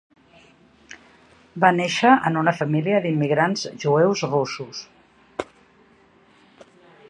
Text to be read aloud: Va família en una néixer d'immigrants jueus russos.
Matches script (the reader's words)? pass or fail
fail